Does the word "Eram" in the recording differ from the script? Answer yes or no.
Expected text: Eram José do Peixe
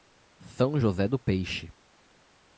yes